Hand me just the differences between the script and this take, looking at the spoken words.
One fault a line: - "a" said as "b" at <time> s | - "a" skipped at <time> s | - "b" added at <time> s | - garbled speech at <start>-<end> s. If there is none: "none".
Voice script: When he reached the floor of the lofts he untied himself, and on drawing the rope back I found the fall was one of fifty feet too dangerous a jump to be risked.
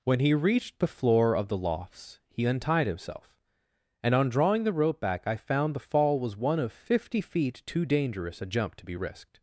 none